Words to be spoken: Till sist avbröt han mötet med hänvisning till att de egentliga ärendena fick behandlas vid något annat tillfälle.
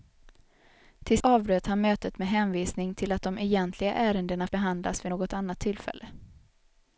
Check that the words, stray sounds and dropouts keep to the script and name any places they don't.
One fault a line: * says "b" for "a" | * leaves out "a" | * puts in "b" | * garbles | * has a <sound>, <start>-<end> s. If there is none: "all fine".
* leaves out "sist"
* leaves out "fick"